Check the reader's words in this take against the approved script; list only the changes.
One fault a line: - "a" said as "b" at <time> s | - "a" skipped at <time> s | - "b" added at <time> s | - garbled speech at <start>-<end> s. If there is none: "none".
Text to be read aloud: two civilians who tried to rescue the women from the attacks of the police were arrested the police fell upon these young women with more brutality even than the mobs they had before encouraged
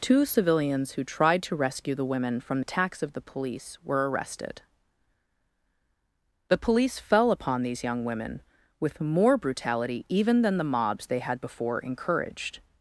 - "the" skipped at 2.6 s